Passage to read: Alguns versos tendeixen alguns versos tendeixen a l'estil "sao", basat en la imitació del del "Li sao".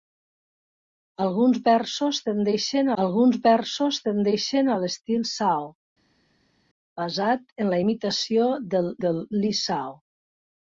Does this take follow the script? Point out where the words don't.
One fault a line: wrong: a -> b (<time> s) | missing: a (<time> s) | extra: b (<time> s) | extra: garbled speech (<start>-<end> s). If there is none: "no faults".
no faults